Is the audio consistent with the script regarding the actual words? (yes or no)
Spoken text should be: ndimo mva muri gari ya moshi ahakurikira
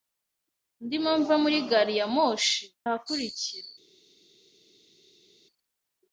yes